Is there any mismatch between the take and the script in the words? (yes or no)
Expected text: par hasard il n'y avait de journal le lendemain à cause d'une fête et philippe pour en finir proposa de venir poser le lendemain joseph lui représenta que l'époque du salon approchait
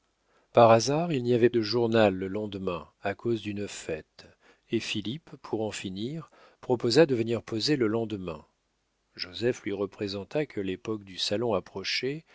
no